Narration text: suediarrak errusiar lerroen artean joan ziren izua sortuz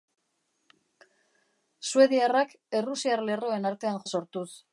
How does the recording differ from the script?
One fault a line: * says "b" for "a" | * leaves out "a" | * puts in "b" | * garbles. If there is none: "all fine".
* leaves out "joan ziren izua"